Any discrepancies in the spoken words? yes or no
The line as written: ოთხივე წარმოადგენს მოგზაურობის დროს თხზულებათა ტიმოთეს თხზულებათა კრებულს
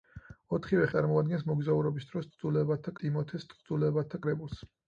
no